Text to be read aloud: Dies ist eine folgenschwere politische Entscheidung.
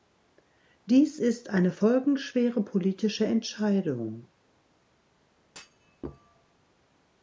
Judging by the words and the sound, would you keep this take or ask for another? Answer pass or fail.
fail